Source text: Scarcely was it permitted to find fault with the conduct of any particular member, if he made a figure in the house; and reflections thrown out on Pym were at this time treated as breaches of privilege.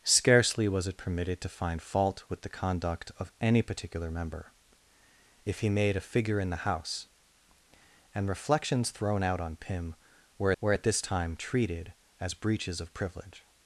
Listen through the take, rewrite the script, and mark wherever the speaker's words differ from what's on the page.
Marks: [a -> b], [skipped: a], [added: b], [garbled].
Scarcely was it permitted to find fault with the conduct of any particular member, if he made a figure in the house; and reflections thrown out on Pym were [added: were] at this time treated as breaches of privilege.